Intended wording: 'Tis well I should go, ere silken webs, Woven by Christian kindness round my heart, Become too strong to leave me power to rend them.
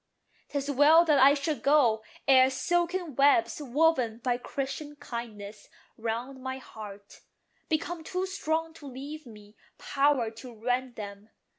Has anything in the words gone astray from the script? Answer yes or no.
yes